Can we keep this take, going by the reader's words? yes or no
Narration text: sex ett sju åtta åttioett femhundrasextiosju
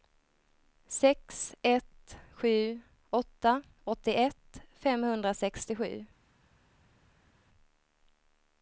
yes